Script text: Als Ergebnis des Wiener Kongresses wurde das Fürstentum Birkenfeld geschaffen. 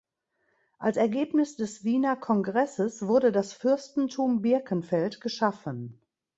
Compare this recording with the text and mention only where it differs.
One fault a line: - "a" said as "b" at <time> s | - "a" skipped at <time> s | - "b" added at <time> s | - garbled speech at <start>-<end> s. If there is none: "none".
none